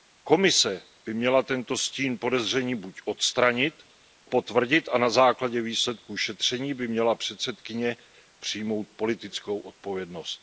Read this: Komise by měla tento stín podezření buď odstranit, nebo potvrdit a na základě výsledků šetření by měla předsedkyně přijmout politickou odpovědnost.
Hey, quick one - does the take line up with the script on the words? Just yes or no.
no